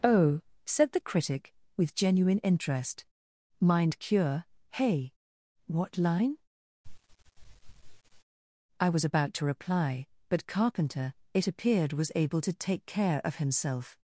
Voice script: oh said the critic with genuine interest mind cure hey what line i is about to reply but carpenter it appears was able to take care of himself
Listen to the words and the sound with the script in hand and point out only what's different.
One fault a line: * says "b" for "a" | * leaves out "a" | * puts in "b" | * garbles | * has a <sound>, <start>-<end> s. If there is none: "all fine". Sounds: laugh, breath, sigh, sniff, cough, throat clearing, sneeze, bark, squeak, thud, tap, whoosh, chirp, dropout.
* has a sniff, 6.8-8.2 s
* says "was" for "is"
* says "appeared" for "appears"